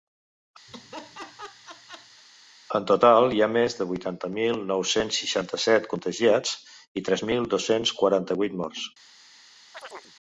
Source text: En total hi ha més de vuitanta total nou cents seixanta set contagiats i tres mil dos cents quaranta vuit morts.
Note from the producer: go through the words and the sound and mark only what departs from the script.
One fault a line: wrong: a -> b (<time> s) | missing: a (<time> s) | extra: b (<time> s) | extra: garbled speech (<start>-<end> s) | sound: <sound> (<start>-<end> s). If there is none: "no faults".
sound: laugh (0.7-2.2 s)
wrong: total -> mil (4.4 s)
sound: chirp (9.7-10.1 s)